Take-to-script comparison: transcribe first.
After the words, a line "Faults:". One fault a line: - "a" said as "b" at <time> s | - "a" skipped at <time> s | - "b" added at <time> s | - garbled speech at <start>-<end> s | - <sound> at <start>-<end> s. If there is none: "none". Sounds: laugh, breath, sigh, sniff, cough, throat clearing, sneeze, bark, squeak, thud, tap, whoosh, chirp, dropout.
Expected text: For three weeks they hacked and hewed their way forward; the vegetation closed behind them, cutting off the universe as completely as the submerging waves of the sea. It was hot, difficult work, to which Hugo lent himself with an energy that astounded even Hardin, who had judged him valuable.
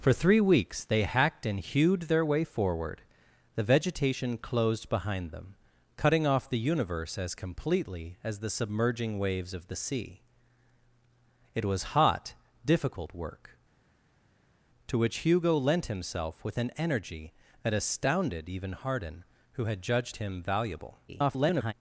For three weeks they hacked and hewed their way forward; the vegetation closed behind them, cutting off the universe as completely as the submerging waves of the sea. It was hot, difficult work, to which Hugo lent himself with an energy that astounded even Hardin, who had judged him valuable. [garbled]
Faults:
- garbled speech at 21.1-21.7 s